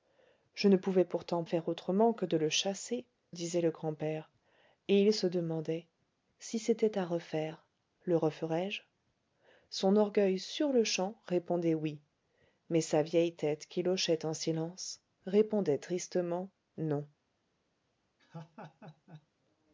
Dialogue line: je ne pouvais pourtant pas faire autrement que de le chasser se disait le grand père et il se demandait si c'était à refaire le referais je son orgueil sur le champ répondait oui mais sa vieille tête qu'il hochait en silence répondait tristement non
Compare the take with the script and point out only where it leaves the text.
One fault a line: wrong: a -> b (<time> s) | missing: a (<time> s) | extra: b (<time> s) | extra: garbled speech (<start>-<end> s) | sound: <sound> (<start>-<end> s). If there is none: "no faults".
missing: pas (1.4 s)
missing: se (3.1 s)
sound: laugh (18.2-19.3 s)